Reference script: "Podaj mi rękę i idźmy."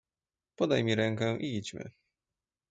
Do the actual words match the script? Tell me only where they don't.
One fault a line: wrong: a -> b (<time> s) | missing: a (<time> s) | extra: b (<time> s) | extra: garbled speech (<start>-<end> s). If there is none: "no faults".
no faults